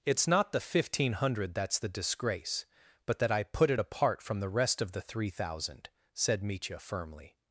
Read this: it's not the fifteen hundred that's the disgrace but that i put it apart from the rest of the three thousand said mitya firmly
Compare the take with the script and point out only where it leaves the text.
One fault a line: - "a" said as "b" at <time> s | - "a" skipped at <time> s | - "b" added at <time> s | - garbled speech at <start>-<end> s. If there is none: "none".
none